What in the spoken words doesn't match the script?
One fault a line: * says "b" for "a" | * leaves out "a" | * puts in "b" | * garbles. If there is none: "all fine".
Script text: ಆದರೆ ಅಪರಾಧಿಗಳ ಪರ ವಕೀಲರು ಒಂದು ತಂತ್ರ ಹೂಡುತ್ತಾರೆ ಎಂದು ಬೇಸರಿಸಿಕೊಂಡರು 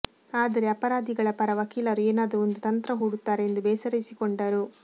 * puts in "ಏನಾದರೂ"